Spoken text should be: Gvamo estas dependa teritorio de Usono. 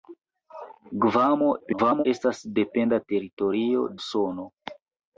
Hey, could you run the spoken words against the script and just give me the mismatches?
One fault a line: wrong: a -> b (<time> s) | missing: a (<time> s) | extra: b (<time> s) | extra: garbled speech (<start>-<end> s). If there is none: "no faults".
extra: garbled speech (1.6-2.0 s)
missing: de (3.9 s)